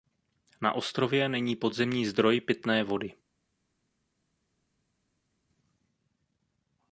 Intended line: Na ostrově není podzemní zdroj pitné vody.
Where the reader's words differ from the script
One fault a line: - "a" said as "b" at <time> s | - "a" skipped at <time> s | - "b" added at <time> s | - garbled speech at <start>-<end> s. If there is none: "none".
none